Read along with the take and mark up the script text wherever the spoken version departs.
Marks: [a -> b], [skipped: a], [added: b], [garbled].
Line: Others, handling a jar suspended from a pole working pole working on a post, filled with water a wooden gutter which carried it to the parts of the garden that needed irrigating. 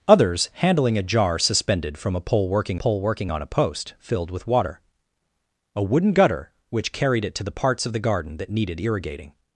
Others, handling a jar suspended from a pole working pole working on a post, filled with water a wooden gutter which carried it to the parts of the garden that needed irrigating.